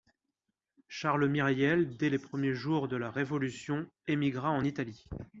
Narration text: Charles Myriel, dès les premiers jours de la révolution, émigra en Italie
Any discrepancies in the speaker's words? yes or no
no